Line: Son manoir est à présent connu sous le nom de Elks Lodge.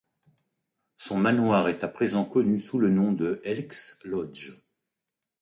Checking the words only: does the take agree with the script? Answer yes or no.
yes